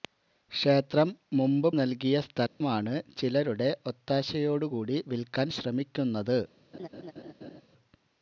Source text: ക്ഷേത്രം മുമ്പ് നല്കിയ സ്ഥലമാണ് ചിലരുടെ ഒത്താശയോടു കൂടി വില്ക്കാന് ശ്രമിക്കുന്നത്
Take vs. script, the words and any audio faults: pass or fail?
fail